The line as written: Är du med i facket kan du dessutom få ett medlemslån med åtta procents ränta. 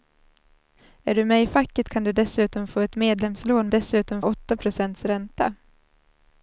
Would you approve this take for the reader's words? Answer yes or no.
no